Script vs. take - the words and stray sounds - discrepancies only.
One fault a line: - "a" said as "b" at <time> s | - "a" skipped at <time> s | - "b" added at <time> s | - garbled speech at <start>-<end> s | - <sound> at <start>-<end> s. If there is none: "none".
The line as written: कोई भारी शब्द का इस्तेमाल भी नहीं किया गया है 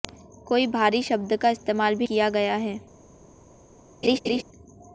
- "नहीं" skipped at 2.1 s
- laugh at 4.0-4.4 s